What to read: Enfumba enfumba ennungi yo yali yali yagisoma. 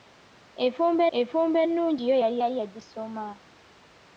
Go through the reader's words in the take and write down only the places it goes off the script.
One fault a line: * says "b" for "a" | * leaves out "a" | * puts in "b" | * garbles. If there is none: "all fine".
all fine